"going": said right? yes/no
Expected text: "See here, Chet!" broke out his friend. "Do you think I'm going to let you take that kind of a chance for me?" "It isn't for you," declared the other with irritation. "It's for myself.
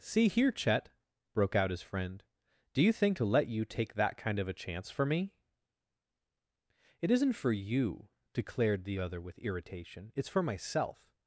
no